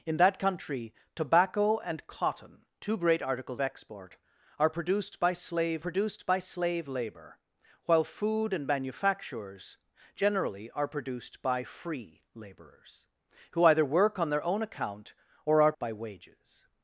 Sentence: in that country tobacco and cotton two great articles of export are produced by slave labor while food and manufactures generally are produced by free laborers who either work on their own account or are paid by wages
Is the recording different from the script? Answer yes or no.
yes